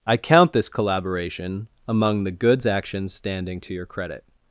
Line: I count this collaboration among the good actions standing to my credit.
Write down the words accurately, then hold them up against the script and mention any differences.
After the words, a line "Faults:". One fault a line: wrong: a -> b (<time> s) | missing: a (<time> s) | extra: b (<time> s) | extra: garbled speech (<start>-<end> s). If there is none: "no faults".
I count this collaboration among the goods actions standing to your credit.
Faults:
wrong: good -> goods (2.3 s)
wrong: my -> your (3.7 s)